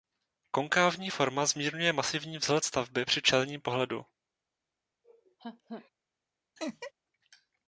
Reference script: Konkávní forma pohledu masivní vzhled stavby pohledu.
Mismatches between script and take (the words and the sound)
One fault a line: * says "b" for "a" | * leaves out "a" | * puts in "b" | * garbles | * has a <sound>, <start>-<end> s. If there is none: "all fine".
* says "zmírňuje" for "pohledu"
* puts in "při čelním"
* has a laugh, 5.0-5.9 s
* has a laugh, 6.6-6.9 s